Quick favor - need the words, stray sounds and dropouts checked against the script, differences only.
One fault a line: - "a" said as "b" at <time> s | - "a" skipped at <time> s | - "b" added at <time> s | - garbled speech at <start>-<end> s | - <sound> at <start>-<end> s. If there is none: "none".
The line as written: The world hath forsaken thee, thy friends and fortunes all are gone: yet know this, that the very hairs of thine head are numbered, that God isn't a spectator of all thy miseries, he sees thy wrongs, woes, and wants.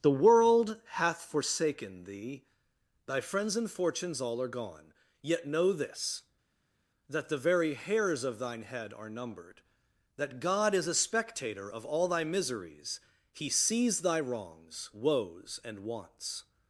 - "isn't" said as "is" at 10.7 s